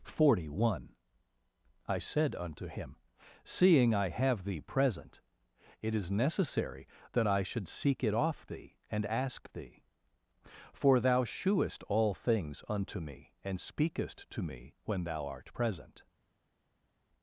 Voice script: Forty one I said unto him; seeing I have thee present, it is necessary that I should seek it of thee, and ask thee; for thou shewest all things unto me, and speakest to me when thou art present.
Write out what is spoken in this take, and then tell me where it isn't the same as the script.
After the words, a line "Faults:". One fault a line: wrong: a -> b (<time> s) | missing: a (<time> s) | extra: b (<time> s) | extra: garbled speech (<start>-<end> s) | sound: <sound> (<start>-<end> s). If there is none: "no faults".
Forty one I said unto him; seeing I have thee present, it is necessary that I should seek it off thee, and ask thee; for thou shewest all things unto me, and speakest to me when thou art present.
Faults:
wrong: of -> off (8.1 s)